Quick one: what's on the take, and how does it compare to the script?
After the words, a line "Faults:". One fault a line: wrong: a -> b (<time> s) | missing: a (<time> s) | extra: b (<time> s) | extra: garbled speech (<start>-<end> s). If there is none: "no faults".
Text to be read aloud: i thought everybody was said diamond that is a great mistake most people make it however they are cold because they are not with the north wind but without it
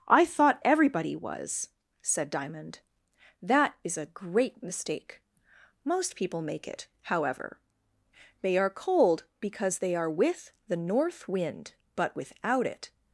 i thought everybody was said diamond that is a great mistake most people make it however they are cold because they are with the north wind but without it
Faults:
missing: not (10.1 s)